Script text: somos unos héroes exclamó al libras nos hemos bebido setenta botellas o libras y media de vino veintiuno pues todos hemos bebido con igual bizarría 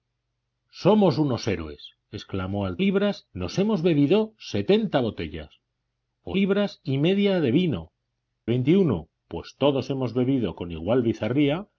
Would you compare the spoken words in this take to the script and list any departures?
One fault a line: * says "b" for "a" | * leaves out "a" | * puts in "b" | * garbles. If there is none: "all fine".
all fine